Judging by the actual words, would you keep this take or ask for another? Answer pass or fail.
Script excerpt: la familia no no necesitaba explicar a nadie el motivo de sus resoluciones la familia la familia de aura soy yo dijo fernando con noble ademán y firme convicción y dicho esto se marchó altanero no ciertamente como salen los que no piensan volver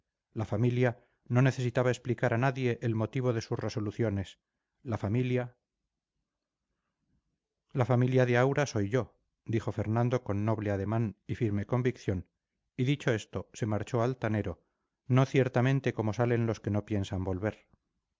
fail